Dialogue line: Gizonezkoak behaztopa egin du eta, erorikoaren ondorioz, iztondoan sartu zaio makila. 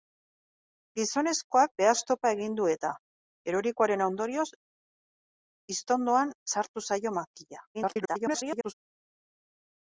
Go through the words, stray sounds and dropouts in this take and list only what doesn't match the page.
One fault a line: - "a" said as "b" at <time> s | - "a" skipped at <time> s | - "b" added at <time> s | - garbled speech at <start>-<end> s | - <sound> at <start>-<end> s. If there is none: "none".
- garbled speech at 7.7-8.7 s